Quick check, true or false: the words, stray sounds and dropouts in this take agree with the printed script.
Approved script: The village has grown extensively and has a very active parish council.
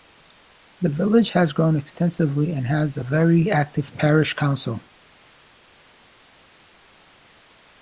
true